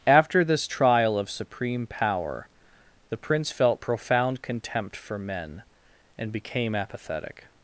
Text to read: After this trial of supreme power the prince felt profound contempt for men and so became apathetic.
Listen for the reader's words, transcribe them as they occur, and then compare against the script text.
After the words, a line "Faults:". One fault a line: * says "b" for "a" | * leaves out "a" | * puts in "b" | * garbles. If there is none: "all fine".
After this trial of supreme power the prince felt profound contempt for men and became apathetic.
Faults:
* leaves out "so"